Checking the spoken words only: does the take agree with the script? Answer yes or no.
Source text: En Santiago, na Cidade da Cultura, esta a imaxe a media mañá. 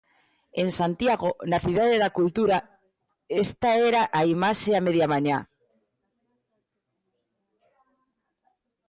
no